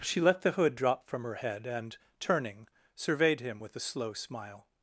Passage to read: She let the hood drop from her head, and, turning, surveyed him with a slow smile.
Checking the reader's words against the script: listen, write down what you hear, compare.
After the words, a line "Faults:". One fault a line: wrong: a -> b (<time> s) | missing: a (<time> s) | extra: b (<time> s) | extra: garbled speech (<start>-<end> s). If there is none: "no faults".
She let the hood drop from her head, and, turning, surveyed him with a slow smile.
Faults:
no faults